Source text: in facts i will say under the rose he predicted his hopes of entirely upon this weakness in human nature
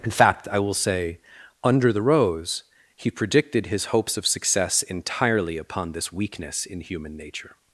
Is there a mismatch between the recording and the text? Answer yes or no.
yes